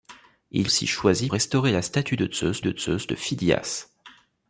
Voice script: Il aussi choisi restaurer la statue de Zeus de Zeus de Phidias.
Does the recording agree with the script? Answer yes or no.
yes